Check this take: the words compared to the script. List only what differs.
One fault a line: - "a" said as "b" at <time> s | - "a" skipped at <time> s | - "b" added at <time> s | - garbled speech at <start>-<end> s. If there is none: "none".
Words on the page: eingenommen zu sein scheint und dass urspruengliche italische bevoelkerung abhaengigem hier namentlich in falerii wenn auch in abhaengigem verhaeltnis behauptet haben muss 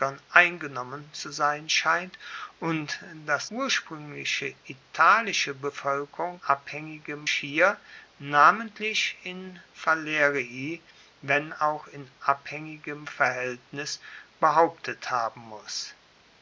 none